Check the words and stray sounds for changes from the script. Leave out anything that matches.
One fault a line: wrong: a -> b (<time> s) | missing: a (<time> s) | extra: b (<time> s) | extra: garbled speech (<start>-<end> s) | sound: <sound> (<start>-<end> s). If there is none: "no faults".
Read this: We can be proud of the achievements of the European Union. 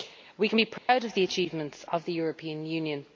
sound: dropout (0.8-0.9 s)